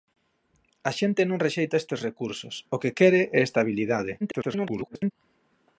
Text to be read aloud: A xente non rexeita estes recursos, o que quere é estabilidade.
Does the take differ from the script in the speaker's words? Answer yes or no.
yes